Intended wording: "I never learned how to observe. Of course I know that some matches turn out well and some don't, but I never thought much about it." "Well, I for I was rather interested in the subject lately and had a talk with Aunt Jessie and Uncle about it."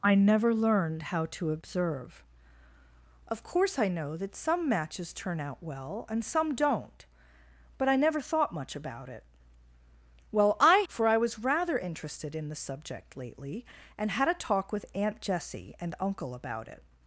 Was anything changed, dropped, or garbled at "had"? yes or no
no